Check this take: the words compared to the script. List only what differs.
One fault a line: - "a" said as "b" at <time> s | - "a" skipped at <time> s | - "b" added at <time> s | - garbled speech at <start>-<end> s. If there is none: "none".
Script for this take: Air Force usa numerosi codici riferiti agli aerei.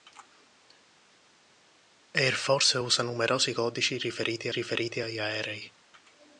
- "riferiti" added at 4.5 s